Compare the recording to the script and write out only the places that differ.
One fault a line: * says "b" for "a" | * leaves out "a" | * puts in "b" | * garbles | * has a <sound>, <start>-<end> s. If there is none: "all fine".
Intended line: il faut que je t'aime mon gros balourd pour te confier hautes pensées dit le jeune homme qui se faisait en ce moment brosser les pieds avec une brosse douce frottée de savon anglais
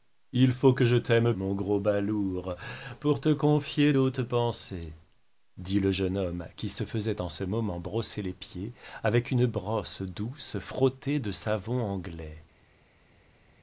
all fine